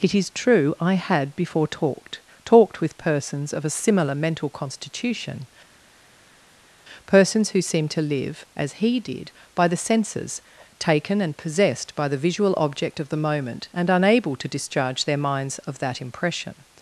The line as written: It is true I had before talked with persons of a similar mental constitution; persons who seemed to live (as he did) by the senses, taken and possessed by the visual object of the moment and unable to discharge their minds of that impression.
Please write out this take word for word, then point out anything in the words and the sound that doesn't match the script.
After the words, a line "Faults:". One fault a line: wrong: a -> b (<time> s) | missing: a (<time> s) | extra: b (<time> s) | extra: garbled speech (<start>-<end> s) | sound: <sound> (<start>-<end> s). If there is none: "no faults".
It is true I had before talked talked with persons of a similar mental constitution; persons who seemed to live (as he did) by the senses, taken and possessed by the visual object of the moment and unable to discharge their minds of that impression.
Faults:
extra: talked (2.4 s)